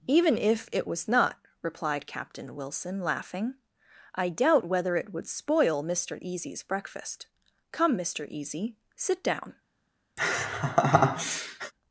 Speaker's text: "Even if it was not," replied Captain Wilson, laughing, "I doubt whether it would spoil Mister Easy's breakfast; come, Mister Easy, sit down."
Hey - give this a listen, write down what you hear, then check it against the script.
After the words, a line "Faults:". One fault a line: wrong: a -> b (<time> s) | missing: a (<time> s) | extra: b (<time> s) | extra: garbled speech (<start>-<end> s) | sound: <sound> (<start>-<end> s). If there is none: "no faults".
"Even if it was not," replied Captain Wilson, laughing, "I doubt whether it would spoil Mister Easy's breakfast; come, Mister Easy, sit down."
Faults:
sound: laugh (10.2-11.7 s)